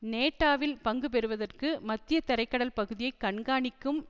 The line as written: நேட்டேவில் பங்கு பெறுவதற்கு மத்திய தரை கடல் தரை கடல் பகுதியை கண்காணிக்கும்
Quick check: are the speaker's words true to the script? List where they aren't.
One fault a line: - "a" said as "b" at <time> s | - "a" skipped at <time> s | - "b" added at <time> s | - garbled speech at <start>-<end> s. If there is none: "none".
- "தரை கடல்" skipped at 2.8 s